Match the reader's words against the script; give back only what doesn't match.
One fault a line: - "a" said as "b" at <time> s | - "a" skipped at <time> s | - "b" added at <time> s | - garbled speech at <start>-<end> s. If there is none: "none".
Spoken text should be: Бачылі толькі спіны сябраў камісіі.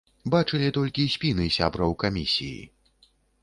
none